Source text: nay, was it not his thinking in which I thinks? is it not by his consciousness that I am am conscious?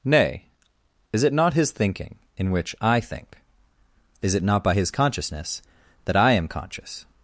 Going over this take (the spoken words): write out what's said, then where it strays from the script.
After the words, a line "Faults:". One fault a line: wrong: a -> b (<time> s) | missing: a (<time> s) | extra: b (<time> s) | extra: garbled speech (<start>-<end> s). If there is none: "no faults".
nay, is it not his thinking in which I think? is it not by his consciousness that I am conscious?
Faults:
wrong: was -> is (1.1 s)
wrong: thinks -> think (3.0 s)
missing: am (6.5 s)